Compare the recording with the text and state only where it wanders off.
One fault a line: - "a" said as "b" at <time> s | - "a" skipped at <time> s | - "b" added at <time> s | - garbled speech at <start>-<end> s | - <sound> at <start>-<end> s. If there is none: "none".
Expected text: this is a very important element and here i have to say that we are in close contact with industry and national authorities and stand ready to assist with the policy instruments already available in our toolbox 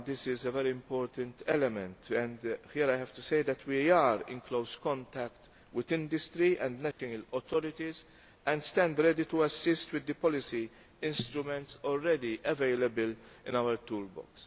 - dropout at 6.9-7.0 s